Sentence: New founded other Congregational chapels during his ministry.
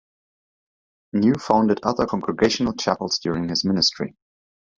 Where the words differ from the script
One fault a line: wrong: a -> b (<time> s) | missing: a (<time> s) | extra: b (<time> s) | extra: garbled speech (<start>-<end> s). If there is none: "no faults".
no faults